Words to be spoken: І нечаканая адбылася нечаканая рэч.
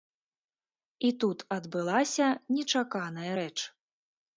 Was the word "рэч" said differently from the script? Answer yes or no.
no